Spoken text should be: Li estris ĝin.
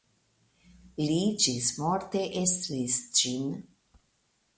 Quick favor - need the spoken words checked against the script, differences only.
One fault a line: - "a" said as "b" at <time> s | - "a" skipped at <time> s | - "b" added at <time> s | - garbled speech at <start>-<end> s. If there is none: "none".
- "ĝismorte" added at 1.4 s